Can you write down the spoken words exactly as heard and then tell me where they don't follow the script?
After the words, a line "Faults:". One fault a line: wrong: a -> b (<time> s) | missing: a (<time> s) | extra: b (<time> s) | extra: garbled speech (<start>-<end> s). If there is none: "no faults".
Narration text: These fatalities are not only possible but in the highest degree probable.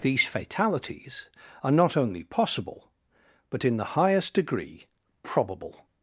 These fatalities are not only possible but in the highest degree probable.
Faults:
no faults